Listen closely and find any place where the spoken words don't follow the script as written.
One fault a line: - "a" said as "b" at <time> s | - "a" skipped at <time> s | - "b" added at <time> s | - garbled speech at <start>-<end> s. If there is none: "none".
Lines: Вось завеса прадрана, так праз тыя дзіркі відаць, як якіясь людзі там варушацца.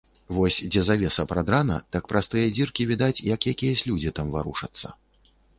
- "дзе" added at 0.7 s